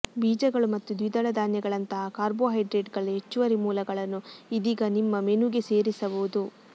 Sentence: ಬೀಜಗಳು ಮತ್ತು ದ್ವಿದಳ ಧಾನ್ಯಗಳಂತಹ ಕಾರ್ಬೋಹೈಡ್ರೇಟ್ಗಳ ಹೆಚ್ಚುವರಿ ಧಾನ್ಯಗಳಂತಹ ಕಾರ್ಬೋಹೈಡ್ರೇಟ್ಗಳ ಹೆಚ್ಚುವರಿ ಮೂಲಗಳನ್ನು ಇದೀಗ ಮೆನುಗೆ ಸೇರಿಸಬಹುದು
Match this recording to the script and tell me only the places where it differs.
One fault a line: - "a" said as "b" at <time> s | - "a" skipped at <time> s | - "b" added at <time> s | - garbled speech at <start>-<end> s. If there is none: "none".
- "ಧಾನ್ಯಗಳಂತಹ ಕಾರ್ಬೋಹೈಡ್ರೇಟ್ಗಳ ಹೆಚ್ಚುವರಿ" skipped at 3.6 s
- "ನಿಮ್ಮ" added at 5.0 s